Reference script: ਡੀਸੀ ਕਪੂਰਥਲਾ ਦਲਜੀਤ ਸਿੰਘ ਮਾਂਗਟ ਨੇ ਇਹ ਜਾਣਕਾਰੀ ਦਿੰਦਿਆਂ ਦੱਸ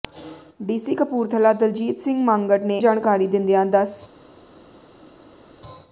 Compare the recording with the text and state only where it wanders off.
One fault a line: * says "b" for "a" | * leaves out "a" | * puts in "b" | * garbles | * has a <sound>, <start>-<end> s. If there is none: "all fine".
* leaves out "ਇਹ"